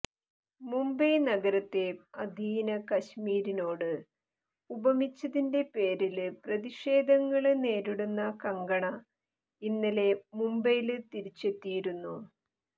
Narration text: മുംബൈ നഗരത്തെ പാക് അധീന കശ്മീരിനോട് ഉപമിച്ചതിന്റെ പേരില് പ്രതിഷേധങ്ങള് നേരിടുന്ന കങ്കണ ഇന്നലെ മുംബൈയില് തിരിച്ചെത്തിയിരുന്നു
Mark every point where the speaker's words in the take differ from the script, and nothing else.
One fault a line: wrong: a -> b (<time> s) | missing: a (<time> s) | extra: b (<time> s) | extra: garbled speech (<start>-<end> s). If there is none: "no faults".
missing: പാക് (1.8 s)